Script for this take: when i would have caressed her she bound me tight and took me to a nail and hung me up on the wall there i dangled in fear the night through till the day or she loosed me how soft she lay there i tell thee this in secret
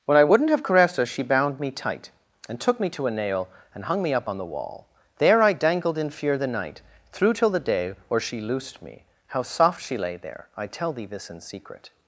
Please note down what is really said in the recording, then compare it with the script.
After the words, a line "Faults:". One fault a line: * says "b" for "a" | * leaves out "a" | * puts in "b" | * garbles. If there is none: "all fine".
when i wouldn't have caressed her she bound me tight and took me to a nail and hung me up on the wall there i dangled in fear the night through till the day or she loosed me how soft she lay there i tell thee this in secret
Faults:
* says "wouldn't" for "would"